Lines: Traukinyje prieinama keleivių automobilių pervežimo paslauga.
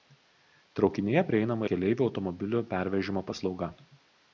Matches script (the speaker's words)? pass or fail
pass